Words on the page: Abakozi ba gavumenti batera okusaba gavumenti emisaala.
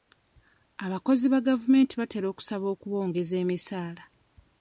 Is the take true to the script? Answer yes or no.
no